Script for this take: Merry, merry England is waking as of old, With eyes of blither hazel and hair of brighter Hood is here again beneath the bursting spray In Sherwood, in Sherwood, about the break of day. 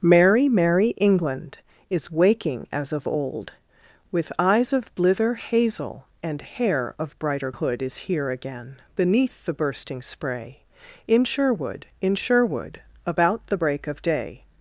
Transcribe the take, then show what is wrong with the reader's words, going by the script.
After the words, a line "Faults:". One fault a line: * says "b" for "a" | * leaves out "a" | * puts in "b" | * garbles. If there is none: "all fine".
Merry, merry England is waking as of old, With eyes of blither hazel and hair of brighter Hood is here again beneath the bursting spray In Sherwood, in Sherwood, about the break of day.
Faults:
all fine